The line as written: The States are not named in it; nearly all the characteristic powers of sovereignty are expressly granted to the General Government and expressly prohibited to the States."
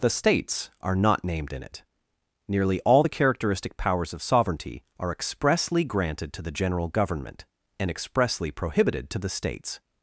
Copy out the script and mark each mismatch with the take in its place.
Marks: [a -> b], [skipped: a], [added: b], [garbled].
The States are not named in it; nearly all the characteristic powers of sovereignty are expressly granted to the General Government and expressly prohibited to the States."